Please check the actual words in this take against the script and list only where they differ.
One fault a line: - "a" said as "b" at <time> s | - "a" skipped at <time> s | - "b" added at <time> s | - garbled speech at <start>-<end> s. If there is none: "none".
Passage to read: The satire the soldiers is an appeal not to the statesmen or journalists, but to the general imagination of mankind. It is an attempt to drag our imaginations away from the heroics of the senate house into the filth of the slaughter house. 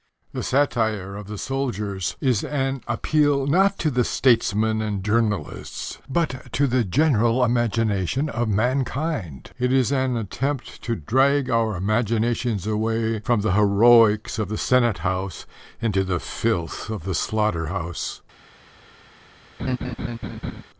- "of" added at 1.1 s
- "or" said as "and" at 4.8 s